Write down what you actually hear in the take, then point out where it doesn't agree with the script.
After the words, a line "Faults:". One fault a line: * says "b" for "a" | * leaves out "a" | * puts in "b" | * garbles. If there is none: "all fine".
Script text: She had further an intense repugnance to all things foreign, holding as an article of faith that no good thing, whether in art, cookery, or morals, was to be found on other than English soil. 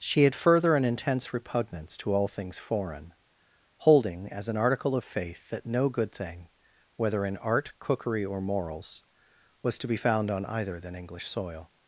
She had further an intense repugnance to all things foreign, holding as an article of faith that no good thing, whether in art, cookery, or morals, was to be found on either than English soil.
Faults:
* says "either" for "other"